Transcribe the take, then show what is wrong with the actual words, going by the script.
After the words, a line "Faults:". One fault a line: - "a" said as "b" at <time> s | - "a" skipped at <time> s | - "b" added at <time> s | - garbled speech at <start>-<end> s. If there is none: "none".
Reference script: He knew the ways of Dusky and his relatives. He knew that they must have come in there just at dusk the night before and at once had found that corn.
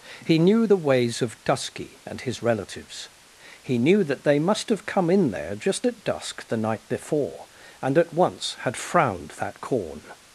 He knew the ways of Dusky and his relatives. He knew that they must have come in there just at dusk the night before and at once had frowned that corn.
Faults:
- "found" said as "frowned" at 8.8 s